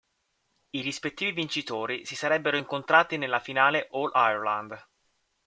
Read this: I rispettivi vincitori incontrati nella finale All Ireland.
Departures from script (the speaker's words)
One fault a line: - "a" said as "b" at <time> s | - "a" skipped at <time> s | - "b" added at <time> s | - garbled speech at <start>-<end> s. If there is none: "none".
- "si sarebbero" added at 2.0 s